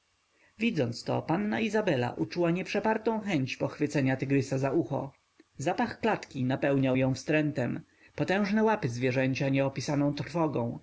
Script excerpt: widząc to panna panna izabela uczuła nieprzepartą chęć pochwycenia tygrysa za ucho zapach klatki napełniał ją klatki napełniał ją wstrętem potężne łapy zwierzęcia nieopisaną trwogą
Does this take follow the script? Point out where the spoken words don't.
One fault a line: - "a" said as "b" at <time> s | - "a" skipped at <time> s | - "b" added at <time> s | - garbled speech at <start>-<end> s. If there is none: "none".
- "panna" skipped at 1.6 s
- "klatki napełniał ją" skipped at 7.1 s